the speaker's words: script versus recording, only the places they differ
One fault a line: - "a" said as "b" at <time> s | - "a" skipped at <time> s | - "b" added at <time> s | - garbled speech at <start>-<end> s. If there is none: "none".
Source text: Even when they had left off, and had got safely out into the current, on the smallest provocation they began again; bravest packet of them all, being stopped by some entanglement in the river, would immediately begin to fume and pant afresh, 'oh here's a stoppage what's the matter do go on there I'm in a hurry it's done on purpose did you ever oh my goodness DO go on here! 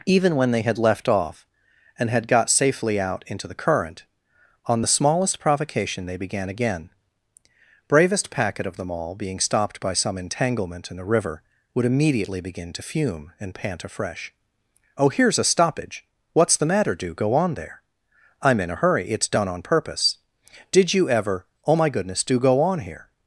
none